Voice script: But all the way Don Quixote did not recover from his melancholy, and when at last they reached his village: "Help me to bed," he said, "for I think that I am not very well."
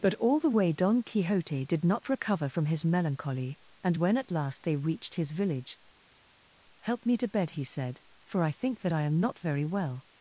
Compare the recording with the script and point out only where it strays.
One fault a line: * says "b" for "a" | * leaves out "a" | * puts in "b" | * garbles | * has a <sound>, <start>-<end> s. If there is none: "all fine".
all fine